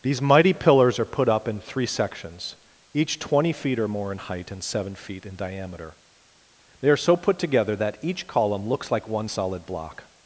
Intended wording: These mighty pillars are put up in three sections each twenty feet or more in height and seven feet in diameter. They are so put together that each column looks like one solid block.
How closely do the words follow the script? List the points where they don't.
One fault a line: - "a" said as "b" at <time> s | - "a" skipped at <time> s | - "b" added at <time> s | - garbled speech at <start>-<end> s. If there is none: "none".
none